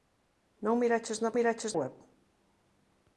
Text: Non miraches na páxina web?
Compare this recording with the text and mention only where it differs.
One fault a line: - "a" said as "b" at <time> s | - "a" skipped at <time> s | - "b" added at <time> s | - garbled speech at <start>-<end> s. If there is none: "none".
- "páxina" said as "miraches" at 1.4 s